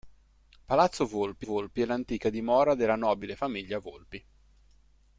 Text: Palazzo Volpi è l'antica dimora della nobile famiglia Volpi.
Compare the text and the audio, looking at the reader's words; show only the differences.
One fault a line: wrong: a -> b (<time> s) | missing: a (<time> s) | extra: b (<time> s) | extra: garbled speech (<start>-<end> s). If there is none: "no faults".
extra: Volpi (1.4 s)